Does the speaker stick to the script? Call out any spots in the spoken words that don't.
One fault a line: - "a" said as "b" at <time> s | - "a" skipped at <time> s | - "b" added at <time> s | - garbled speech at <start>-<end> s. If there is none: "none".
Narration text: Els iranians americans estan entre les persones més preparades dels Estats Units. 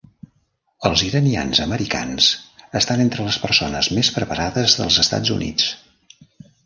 none